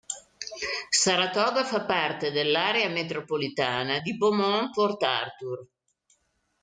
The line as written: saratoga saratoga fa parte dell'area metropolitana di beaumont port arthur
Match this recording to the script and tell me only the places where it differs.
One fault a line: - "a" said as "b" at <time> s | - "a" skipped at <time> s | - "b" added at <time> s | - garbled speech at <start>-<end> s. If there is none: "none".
- "saratoga" skipped at 1.6 s